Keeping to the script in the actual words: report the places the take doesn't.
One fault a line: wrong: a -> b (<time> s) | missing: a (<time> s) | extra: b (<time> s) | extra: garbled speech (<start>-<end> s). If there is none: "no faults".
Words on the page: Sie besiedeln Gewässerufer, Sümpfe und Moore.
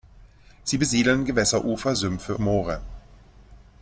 missing: und (2.4 s)